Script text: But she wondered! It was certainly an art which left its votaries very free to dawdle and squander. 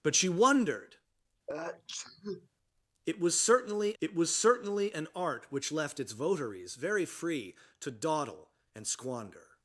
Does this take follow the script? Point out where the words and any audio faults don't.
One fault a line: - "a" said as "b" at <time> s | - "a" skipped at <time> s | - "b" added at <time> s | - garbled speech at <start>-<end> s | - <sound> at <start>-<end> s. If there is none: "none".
- sneeze at 1.5-2.5 s
- "it was certainly" added at 4.0 s